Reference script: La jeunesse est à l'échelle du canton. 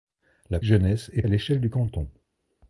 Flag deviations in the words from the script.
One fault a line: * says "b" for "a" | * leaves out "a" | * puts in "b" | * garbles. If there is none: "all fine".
all fine